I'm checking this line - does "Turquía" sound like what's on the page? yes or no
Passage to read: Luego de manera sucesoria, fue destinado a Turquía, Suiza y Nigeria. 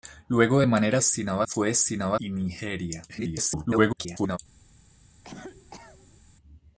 no